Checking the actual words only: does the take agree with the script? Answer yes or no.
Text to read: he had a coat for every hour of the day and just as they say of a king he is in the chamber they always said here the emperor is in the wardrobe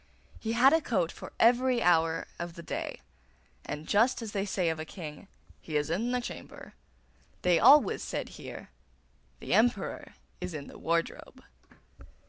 yes